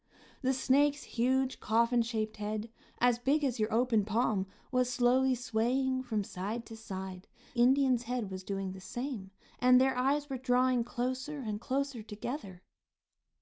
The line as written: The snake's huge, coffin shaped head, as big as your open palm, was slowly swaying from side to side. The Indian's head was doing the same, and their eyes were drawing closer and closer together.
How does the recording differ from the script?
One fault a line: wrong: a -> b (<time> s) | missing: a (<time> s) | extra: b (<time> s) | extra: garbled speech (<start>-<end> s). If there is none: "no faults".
missing: The (7.3 s)